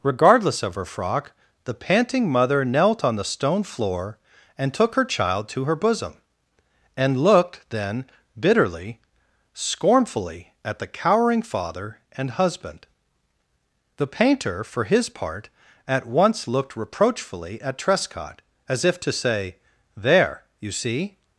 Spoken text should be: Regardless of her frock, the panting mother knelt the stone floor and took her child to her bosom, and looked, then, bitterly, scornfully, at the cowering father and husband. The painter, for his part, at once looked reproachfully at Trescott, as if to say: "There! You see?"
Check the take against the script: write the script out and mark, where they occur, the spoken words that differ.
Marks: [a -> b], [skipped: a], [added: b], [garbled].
Regardless of her frock, the panting mother knelt [added: on] the stone floor and took her child to her bosom, and looked, then, bitterly, scornfully, at the cowering father and husband. The painter, for his part, at once looked reproachfully at Trescott, as if to say: "There! You see?"